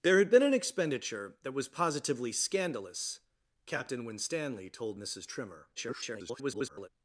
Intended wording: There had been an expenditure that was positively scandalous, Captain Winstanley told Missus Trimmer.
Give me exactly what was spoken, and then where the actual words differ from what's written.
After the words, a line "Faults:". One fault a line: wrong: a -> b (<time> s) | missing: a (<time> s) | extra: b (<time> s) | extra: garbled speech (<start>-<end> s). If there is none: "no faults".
There had been an expenditure that was positively scandalous, Captain Winstanley told Missus Trimmer. [garbled]
Faults:
extra: garbled speech (5.8-6.9 s)